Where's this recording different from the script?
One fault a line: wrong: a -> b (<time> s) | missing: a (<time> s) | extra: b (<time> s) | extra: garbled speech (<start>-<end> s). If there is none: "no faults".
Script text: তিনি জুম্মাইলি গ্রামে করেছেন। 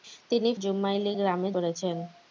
no faults